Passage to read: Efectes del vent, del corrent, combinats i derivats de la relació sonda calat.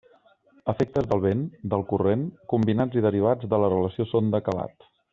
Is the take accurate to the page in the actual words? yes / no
yes